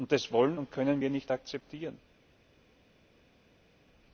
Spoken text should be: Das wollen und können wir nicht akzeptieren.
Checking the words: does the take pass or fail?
pass